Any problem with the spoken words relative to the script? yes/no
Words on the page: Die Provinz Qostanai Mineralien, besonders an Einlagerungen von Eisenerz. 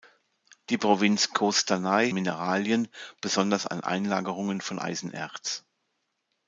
no